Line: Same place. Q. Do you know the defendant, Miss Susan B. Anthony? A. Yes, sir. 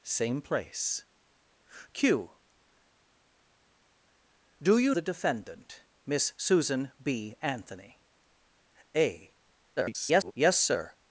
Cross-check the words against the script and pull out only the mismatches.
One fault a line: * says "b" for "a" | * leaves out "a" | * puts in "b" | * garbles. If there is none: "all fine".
* leaves out "know"
* garbles